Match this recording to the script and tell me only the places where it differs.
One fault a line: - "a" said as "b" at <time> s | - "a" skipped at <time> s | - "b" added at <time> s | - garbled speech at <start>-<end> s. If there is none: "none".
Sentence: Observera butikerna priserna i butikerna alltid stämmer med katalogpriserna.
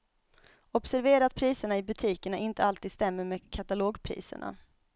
- "butikerna" said as "att" at 1.2 s
- "inte" added at 2.4 s